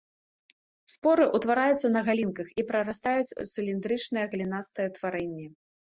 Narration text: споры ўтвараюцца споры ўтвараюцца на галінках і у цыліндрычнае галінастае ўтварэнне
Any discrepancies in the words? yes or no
yes